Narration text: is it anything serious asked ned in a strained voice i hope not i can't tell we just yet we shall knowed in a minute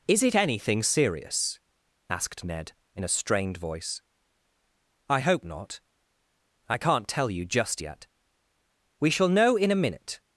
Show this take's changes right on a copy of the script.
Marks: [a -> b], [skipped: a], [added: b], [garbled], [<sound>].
is it anything serious asked ned in a strained voice i hope not i can't tell [we -> you] just yet we shall [knowed -> know] in a minute